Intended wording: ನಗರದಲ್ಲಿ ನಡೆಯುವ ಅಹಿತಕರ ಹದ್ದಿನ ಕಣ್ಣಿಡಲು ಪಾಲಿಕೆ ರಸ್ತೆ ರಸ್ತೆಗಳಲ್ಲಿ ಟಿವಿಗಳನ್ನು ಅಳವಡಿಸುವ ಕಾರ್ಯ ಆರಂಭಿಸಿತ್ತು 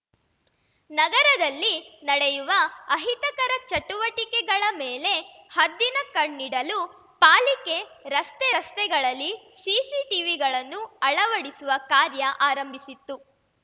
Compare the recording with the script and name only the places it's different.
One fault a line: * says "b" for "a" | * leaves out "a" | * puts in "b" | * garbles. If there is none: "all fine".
* puts in "ಚಟುವಟಿಕೆಗಳ ಮೇಲೆ"
* puts in "ಸಿಸಿ"